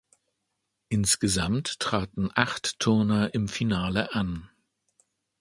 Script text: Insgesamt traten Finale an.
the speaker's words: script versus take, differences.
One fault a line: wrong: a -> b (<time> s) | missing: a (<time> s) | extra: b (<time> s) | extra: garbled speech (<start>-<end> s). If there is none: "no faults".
extra: acht Turner im (2.3 s)